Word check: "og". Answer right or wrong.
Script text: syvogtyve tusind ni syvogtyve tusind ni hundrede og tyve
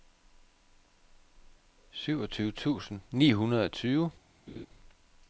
right